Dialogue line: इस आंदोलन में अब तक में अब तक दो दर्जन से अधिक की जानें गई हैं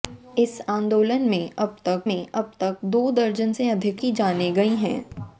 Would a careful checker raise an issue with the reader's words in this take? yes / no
no